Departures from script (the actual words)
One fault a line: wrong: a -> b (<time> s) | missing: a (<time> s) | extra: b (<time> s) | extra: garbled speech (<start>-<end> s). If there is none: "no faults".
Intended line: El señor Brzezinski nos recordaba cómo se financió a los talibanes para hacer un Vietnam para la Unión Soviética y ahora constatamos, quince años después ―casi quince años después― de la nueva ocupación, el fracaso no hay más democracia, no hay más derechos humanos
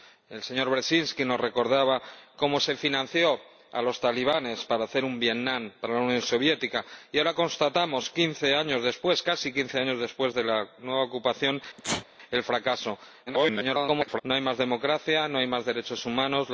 extra: garbled speech (13.3-14.2 s)